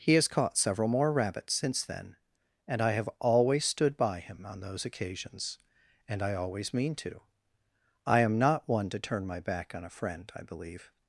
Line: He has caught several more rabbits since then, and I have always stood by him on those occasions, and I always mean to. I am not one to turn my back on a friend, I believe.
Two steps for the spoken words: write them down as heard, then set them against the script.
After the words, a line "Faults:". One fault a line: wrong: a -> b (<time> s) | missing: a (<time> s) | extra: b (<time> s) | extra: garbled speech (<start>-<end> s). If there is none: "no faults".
He has caught several more rabbits since then, and I have always stood by him on those occasions, and I always mean to. I am not one to turn my back on a friend, I believe.
Faults:
no faults